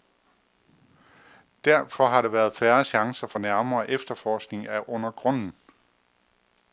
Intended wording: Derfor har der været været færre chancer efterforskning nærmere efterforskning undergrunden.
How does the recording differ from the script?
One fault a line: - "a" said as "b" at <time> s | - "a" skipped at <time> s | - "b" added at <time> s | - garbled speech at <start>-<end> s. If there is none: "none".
- "været" skipped at 2.5 s
- "efterforskning" said as "for" at 3.3 s
- "af" added at 4.7 s